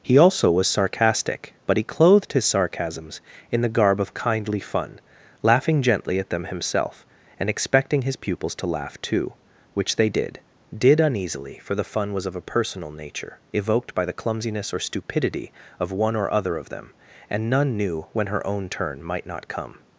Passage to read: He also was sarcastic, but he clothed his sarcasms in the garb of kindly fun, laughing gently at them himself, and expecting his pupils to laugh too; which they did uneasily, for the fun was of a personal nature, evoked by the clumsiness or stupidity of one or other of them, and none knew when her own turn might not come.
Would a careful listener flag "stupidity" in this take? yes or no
no